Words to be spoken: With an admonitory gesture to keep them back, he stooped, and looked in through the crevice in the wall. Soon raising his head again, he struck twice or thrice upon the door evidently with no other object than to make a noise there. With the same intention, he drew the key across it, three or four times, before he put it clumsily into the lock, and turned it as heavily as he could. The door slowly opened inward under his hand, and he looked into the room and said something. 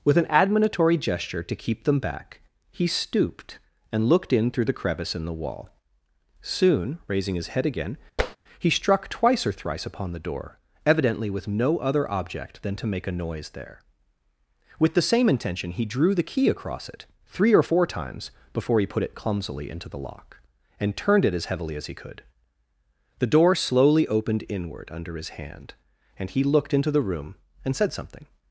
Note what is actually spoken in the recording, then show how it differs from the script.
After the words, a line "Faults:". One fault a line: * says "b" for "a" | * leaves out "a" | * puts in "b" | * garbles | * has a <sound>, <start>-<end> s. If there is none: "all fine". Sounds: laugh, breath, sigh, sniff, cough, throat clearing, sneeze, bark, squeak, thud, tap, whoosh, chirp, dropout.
With an admonitory gesture to keep them back, he stooped, and looked in through the crevice in the wall. Soon raising his head again, he struck twice or thrice upon the door evidently with no other object than to make a noise there. With the same intention, he drew the key across it, three or four times, before he put it clumsily into the lock, and turned it as heavily as he could. The door slowly opened inward under his hand, and he looked into the room and said something.
Faults:
* has a tap, 8.2-8.4 s